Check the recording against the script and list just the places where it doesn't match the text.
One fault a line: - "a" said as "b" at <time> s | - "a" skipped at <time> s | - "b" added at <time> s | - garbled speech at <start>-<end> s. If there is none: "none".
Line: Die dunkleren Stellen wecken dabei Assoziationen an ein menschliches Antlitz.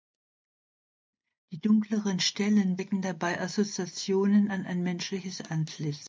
none